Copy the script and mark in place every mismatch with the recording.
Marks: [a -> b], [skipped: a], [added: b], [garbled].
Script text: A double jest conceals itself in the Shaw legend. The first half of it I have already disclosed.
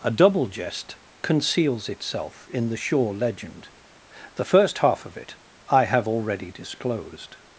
A double jest conceals itself in the Shaw legend. The first half of it I have already disclosed.